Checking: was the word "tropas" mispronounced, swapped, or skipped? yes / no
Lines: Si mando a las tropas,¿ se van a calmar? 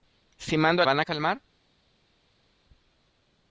yes